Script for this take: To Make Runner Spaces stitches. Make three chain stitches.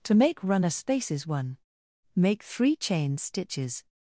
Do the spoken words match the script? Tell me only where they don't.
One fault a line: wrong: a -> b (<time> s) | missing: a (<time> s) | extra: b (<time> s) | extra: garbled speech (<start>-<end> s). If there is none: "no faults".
wrong: stitches -> one (1.3 s)